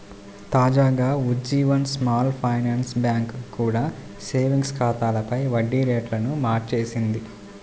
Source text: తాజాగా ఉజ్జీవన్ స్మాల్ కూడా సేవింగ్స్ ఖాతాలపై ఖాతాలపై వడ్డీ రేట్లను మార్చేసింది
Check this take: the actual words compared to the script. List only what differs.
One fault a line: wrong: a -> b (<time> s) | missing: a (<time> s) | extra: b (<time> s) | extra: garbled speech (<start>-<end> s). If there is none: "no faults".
extra: ఫైనాన్స్ బ్యాంక్ (2.4 s)
missing: ఖాతాలపై (5.4 s)